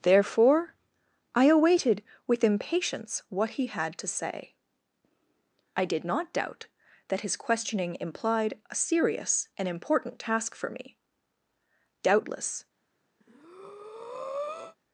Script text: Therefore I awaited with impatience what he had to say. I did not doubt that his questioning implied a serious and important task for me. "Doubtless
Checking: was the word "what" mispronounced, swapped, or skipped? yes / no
no